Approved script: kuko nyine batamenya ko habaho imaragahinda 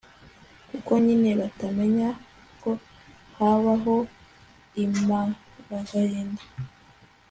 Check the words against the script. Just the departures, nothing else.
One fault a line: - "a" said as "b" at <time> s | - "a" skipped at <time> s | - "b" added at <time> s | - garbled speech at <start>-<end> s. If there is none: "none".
none